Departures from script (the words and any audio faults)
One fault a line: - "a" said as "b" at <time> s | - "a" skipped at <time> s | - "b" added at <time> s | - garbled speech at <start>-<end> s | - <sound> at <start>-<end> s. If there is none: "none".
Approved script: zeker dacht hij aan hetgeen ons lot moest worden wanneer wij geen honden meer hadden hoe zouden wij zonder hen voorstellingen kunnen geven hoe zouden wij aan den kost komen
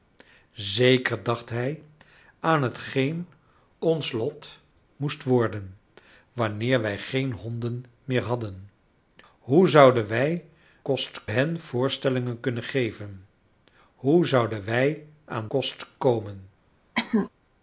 - "zonder" said as "kost" at 10.8 s
- "den" skipped at 15.5 s
- cough at 17.0-17.3 s